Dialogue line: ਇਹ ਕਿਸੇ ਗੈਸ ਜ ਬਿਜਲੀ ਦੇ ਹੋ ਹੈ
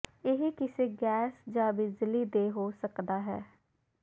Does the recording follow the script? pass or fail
fail